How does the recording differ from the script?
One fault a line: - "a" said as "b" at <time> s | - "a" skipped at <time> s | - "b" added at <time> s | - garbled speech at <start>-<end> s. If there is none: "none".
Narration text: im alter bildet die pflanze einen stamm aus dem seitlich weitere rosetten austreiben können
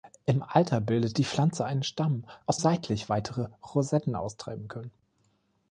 - "dem" skipped at 2.6 s